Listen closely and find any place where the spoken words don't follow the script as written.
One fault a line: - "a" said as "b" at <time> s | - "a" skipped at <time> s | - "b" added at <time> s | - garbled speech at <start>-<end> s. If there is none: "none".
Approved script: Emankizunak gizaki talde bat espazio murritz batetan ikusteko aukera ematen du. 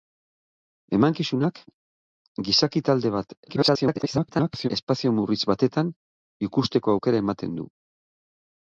- garbled speech at 3.5-4.7 s